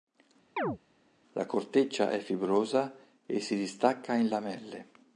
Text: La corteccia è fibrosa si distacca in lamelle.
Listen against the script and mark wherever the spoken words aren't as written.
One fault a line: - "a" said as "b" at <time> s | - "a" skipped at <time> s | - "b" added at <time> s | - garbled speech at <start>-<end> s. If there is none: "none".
- "e" added at 3.2 s